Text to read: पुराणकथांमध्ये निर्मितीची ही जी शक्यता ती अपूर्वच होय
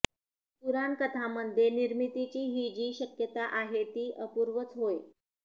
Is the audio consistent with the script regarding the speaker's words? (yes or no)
no